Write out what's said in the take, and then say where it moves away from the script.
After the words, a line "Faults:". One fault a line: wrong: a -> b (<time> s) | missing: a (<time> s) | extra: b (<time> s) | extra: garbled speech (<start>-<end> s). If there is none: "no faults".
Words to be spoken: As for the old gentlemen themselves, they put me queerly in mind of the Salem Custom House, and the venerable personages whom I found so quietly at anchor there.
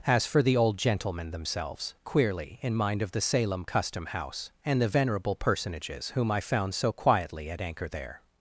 As for the old gentlemen themselves, queerly in mind of the Salem Custom House, and the venerable personages whom I found so quietly at anchor there.
Faults:
missing: they put me (1.9 s)